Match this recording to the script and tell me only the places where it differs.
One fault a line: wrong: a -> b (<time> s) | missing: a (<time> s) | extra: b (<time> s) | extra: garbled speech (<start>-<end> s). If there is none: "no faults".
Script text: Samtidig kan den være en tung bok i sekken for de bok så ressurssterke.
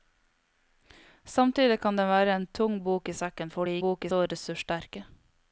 no faults